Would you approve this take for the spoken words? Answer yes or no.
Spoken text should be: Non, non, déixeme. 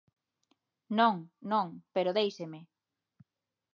no